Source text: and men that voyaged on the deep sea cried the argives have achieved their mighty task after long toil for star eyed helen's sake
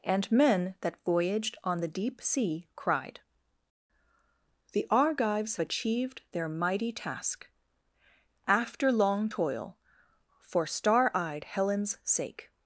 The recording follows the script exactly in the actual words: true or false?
false